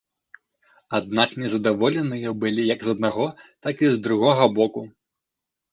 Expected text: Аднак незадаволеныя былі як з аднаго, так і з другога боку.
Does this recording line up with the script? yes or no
yes